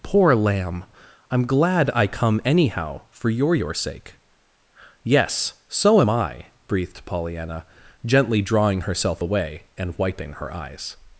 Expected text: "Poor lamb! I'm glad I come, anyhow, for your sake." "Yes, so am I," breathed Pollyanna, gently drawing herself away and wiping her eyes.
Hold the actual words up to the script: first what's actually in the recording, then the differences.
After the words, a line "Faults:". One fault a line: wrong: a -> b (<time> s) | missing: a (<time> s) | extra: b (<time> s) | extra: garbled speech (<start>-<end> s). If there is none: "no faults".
"Poor lamb! I'm glad I come, anyhow, for your your sake." "Yes, so am I," breathed Pollyanna, gently drawing herself away and wiping her eyes.
Faults:
extra: your (3.5 s)